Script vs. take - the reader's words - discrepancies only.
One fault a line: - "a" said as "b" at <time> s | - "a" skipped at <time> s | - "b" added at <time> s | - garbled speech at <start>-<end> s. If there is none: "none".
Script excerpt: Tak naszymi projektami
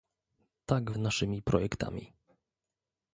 none